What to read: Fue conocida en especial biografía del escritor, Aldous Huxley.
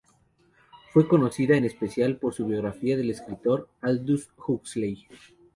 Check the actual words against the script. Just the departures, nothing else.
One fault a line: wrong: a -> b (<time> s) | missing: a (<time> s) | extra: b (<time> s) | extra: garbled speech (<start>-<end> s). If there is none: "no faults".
extra: por su (2.2 s)